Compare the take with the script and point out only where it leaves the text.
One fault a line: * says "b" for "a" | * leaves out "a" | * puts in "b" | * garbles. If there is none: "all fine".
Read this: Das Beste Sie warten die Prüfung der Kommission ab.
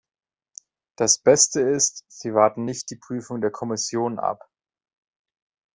* puts in "ist"
* puts in "nicht"